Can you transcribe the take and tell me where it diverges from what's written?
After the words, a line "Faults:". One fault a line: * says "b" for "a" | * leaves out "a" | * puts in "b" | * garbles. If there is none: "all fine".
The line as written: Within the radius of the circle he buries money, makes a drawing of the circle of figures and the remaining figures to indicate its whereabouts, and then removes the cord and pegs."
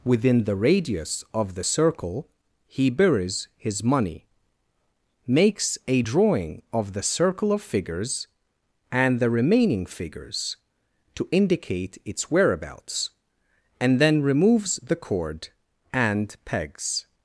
Within the radius of the circle he buries his money, makes a drawing of the circle of figures and the remaining figures to indicate its whereabouts, and then removes the cord and pegs."
Faults:
* puts in "his"